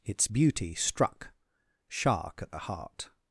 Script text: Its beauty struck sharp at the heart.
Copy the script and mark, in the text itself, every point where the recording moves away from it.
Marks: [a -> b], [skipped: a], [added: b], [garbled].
Its beauty struck [sharp -> shark] at the heart.